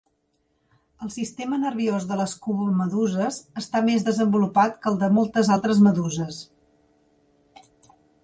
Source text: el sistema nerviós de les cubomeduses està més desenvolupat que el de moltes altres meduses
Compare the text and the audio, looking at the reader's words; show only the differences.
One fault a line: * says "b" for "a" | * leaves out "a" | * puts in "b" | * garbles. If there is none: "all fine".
all fine